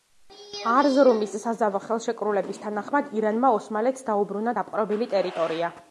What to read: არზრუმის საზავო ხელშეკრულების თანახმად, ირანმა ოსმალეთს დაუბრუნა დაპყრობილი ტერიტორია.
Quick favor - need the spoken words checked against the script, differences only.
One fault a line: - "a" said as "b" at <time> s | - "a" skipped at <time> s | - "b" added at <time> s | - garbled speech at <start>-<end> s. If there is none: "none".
none